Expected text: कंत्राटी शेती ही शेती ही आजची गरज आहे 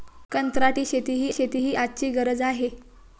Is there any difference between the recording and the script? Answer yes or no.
no